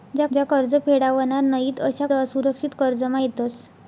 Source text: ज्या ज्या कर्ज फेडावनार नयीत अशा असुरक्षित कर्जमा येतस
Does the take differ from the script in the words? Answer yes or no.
no